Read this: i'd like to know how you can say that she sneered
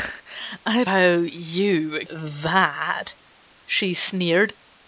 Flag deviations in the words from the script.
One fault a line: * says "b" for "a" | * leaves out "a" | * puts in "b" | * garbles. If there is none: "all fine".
* leaves out "like to know"
* leaves out "can say"